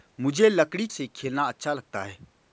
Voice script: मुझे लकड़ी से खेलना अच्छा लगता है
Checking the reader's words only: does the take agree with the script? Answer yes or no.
yes